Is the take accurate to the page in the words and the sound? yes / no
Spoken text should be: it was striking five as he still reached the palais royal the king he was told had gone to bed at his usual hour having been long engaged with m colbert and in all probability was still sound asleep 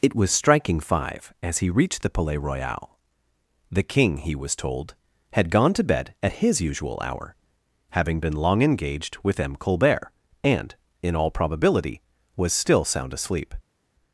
no